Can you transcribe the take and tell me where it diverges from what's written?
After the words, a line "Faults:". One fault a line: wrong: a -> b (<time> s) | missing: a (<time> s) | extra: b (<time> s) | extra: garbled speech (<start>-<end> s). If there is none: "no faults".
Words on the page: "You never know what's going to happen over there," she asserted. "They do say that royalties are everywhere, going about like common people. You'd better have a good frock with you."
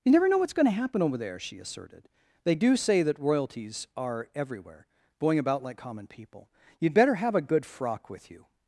"You never know what's going to happen over there," she asserted. "They do say that royalties are everywhere, going about like common people. You'd better have a good frock with you."
Faults:
no faults